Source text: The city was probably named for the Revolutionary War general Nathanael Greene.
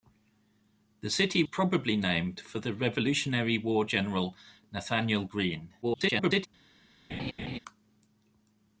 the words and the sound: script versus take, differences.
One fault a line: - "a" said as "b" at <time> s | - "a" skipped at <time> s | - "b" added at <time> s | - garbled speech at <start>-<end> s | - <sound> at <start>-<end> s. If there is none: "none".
- "was" skipped at 1.4 s
- garbled speech at 5.8-6.5 s
- laugh at 7.1-7.6 s